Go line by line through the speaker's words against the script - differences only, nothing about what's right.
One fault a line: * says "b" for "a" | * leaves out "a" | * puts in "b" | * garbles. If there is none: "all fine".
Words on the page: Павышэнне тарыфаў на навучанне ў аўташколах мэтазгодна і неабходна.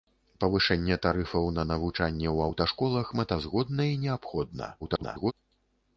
* garbles